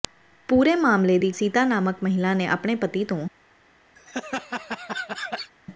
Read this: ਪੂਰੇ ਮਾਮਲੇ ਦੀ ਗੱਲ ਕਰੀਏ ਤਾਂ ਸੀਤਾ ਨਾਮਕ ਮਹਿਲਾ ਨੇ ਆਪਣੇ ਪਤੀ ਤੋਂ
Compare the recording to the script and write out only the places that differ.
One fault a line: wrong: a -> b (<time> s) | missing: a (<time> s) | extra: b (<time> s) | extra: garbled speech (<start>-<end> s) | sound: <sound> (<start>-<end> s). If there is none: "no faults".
missing: ਗੱਲ ਕਰੀਏ ਤਾਂ (1.3 s)
sound: laugh (4.0-5.5 s)